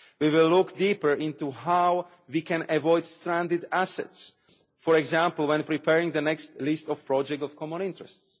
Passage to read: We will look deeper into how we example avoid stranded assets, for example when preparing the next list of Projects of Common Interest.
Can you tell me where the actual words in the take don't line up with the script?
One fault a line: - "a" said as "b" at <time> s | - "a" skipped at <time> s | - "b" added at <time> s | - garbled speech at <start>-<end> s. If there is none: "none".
- "example" said as "can" at 2.4 s